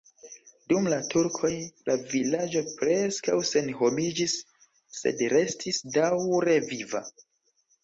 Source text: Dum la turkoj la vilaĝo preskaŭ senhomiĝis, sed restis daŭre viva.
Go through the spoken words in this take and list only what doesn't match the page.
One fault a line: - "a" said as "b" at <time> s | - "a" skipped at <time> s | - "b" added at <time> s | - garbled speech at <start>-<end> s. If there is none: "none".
none